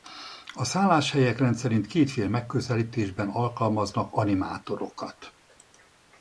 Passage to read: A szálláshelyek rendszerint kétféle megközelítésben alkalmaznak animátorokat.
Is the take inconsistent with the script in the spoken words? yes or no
no